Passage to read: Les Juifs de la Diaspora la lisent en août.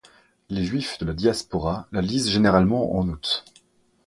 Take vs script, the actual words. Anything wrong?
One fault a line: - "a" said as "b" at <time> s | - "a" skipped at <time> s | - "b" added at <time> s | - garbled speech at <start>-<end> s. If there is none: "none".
- "généralement" added at 2.3 s